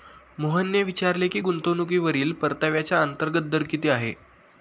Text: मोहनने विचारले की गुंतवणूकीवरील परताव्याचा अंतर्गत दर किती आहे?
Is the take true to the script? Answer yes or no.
yes